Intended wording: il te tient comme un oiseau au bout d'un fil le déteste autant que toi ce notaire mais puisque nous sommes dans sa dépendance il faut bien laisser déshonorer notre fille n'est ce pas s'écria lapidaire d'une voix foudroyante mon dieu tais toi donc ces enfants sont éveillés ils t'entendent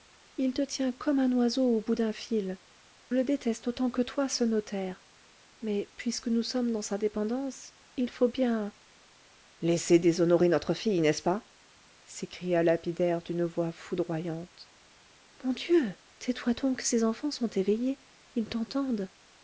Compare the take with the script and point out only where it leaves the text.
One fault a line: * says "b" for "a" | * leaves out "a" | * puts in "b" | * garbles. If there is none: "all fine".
all fine